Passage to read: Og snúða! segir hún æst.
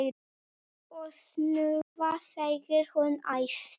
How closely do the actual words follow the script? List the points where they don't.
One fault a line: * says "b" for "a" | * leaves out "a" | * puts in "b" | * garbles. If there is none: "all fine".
all fine